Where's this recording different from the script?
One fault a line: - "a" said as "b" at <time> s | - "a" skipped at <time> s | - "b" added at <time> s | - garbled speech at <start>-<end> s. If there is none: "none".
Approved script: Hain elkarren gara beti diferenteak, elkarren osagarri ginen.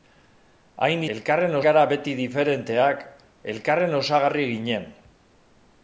none